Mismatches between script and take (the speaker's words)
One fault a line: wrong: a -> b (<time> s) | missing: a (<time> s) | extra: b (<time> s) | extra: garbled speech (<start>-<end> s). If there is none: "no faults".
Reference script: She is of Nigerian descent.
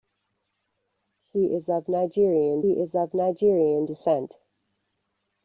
extra: is of Nigerian (2.7 s)